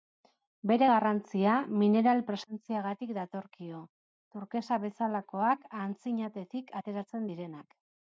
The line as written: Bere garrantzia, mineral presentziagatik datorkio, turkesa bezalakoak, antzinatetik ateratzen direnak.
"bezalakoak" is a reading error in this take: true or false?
false